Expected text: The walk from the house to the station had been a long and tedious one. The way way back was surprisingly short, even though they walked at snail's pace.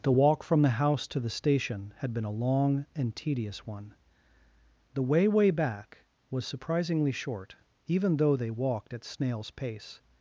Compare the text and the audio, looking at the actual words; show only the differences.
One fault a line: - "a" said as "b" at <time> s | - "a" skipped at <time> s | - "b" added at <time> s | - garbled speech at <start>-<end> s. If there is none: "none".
none